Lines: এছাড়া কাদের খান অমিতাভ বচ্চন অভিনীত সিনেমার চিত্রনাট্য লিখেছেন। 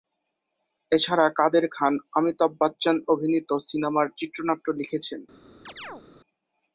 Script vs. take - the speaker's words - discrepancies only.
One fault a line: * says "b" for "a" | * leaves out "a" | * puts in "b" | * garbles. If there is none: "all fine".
all fine